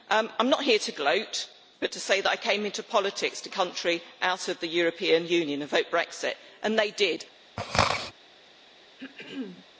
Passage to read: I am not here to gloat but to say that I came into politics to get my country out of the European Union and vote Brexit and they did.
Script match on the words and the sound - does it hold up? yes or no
no